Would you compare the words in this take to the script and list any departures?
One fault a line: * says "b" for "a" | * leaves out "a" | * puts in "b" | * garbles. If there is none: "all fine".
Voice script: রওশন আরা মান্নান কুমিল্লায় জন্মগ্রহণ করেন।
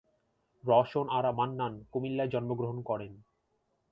all fine